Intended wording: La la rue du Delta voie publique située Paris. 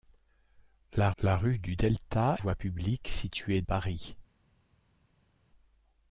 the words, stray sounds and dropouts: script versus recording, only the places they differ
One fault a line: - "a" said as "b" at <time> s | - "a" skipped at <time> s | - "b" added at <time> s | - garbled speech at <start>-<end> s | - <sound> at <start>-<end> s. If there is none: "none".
none